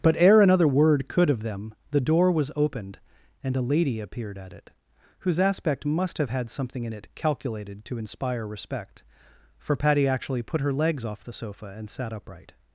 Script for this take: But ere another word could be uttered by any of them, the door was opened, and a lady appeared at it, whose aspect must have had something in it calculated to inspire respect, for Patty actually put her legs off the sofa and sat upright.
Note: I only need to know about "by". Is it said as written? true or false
false